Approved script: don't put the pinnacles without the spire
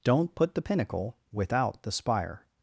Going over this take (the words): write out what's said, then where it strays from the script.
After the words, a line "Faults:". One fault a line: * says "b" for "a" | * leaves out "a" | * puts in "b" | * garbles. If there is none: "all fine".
don't put the pinnacle without the spire
Faults:
* says "pinnacle" for "pinnacles"